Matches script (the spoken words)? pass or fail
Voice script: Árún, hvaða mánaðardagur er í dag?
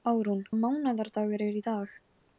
fail